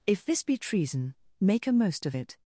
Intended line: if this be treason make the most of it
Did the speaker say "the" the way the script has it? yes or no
no